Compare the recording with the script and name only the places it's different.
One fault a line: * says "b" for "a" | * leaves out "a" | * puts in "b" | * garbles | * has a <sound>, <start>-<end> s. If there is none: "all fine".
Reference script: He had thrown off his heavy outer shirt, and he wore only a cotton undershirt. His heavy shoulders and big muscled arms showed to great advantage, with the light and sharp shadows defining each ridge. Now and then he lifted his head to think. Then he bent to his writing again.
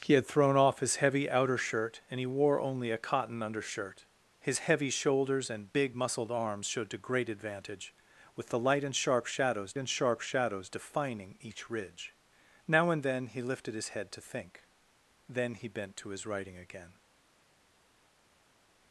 * puts in "and sharp shadows"